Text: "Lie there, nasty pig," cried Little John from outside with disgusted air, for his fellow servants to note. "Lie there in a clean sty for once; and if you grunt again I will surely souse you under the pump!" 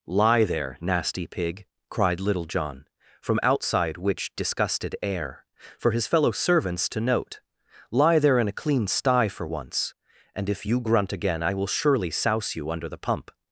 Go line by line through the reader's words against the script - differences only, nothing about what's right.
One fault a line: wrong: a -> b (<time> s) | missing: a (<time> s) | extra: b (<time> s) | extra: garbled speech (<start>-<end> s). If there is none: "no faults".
wrong: with -> which (4.0 s)